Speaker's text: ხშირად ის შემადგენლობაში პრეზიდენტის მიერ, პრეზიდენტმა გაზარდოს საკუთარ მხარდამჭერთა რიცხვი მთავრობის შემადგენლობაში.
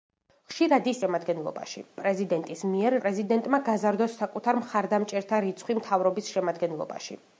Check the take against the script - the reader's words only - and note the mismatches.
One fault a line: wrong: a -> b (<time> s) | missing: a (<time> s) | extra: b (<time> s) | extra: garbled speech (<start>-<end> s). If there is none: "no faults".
no faults